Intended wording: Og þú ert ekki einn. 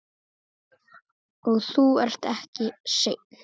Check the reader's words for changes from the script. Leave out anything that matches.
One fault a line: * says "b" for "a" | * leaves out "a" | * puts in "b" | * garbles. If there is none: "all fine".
all fine